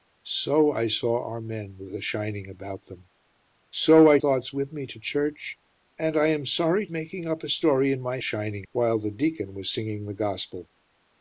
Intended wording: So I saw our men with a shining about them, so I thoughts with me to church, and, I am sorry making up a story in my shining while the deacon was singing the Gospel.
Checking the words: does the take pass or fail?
pass